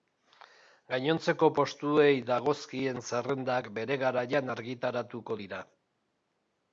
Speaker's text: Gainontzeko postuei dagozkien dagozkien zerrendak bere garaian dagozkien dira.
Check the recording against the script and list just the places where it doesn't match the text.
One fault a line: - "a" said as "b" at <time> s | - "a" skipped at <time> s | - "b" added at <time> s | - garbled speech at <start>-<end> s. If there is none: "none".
- "dagozkien" skipped at 3.0 s
- "dagozkien" said as "argitaratuko" at 4.5 s